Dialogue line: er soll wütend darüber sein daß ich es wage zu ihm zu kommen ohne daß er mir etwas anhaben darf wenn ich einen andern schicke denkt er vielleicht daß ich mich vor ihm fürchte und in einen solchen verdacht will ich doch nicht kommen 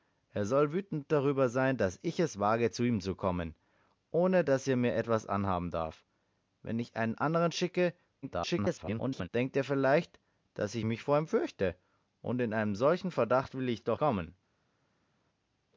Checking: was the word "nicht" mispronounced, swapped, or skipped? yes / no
yes